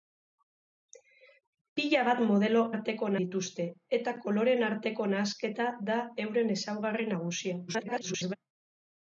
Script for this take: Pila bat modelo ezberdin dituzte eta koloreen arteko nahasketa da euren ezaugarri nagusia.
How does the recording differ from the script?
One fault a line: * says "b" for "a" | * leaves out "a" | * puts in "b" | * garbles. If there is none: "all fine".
* says "arteko" for "ezberdin"
* garbles